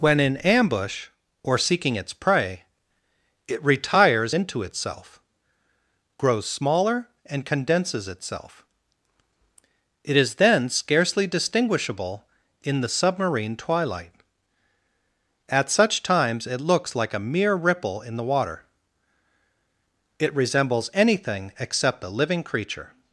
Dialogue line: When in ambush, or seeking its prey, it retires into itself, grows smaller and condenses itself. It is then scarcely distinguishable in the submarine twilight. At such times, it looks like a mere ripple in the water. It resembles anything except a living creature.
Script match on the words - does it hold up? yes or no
yes